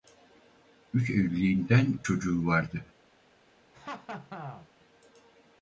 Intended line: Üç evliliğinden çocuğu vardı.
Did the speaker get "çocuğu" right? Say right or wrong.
right